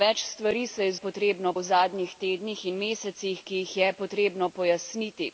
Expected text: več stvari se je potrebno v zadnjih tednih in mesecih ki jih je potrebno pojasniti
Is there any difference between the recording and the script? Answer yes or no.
no